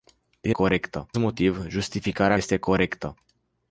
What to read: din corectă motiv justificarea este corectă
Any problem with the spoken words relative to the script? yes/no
no